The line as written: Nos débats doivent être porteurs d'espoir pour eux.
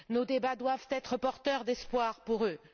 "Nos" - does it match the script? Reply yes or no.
yes